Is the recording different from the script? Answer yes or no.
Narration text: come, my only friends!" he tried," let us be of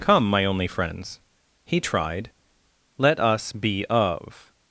no